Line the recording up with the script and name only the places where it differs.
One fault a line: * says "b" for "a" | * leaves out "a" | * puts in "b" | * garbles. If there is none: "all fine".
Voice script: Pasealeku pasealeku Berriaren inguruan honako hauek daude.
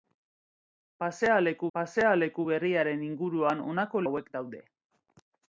all fine